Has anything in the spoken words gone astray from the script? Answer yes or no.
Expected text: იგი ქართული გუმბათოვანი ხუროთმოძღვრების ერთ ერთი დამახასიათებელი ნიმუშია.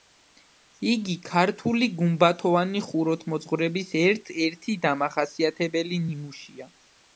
no